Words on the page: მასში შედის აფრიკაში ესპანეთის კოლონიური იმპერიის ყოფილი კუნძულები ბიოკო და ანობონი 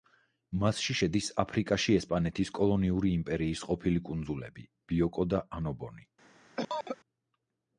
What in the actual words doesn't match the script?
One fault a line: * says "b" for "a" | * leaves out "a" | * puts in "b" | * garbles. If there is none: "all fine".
all fine